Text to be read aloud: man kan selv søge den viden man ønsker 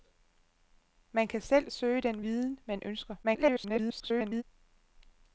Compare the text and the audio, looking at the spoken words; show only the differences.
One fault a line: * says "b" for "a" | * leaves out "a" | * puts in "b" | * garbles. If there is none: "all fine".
* garbles